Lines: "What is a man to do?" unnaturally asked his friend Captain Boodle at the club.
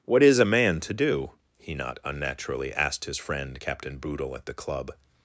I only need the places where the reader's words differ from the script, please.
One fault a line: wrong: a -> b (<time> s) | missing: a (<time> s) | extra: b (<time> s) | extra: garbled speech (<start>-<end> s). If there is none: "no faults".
extra: he not (1.6 s)